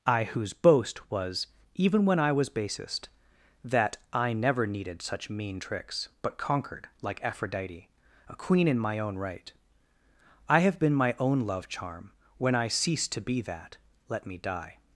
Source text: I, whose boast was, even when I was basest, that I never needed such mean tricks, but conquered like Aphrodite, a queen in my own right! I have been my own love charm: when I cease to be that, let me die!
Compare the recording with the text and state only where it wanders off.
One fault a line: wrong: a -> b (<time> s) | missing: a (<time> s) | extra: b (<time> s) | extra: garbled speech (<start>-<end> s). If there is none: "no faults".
no faults